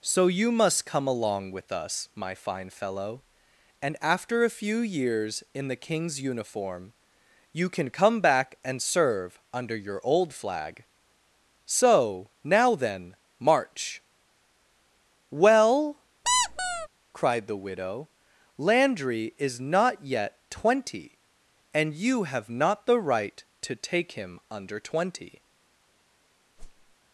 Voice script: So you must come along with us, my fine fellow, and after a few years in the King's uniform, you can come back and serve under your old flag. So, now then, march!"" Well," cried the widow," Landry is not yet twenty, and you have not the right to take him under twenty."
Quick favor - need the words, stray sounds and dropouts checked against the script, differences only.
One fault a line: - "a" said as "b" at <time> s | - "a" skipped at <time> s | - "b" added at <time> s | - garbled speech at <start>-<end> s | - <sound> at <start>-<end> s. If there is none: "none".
- squeak at 16.2-16.9 s
- whoosh at 26.6-27.0 s